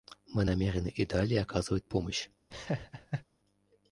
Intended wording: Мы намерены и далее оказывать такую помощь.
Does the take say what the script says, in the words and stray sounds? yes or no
no